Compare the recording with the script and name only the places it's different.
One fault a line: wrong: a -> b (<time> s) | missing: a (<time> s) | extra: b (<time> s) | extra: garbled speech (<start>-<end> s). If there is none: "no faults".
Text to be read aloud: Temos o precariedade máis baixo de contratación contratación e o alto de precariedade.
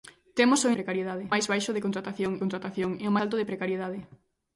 no faults